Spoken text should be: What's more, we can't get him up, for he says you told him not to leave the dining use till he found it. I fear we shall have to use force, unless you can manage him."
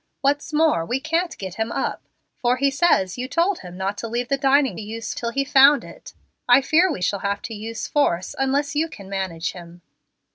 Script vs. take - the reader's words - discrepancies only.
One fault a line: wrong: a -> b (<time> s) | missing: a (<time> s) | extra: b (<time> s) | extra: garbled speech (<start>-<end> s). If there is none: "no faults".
no faults